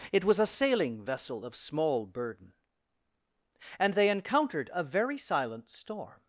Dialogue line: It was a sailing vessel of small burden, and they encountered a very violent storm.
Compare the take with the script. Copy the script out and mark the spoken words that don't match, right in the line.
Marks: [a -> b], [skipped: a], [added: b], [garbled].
It was a sailing vessel of small burden, and they encountered a very [violent -> silent] storm.